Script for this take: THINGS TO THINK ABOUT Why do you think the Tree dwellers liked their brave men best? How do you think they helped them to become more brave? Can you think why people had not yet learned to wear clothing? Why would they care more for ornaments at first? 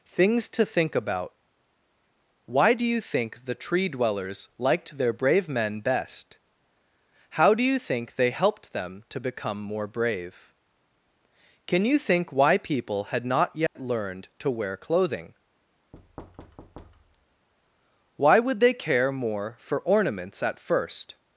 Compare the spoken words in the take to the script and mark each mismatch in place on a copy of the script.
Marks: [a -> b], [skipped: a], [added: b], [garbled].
THINGS TO THINK ABOUT Why do you think the Tree dwellers liked their brave men best? How do you think they helped them to become more brave? Can you think why people had not yet learned to wear clothing? Why would they care more for ornaments at first?